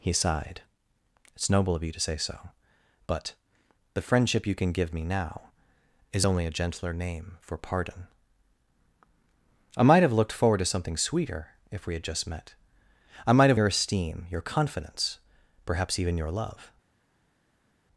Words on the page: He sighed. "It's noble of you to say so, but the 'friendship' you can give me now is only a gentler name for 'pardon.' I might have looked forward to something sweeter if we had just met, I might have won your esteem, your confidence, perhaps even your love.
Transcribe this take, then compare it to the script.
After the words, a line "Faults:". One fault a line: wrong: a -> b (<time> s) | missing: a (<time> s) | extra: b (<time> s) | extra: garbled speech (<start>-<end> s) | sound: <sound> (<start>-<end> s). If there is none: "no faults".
He sighed. "It's noble of you to say so, but the 'friendship' you can give me now is only a gentler name for 'pardon.' I might have looked forward to something sweeter if we had just met, I might have your esteem, your confidence, perhaps even your love.
Faults:
missing: won (13.6 s)